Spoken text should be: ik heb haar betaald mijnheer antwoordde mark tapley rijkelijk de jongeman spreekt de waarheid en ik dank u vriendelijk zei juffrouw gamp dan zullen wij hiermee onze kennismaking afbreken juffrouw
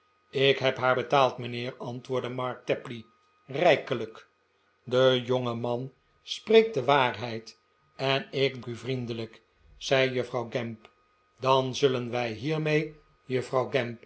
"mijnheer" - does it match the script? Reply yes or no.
yes